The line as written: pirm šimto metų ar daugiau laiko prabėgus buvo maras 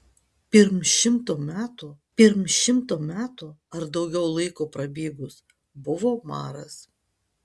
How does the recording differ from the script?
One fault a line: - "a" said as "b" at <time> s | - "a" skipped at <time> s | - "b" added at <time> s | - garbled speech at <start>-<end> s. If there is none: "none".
- "pirm šimto metų" added at 2.2 s